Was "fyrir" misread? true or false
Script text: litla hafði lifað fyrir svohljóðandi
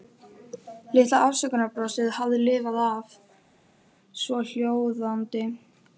true